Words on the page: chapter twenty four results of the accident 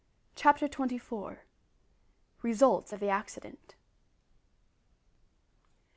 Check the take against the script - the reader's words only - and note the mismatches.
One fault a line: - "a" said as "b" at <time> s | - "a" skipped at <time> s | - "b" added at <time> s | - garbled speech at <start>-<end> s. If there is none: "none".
none